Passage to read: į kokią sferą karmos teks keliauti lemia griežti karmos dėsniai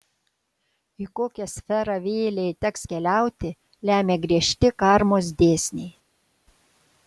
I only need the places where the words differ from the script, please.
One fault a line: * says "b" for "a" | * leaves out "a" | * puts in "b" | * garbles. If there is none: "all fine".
* says "vėlei" for "karmos"